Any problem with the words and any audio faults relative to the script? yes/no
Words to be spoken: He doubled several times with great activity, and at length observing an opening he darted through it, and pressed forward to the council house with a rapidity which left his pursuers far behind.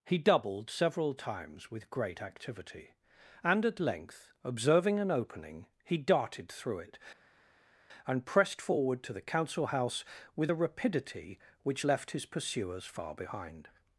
no